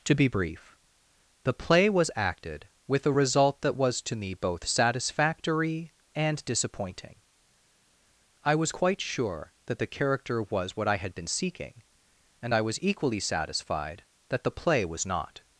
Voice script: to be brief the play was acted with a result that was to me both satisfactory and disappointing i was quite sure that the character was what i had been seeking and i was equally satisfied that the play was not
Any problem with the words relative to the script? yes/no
no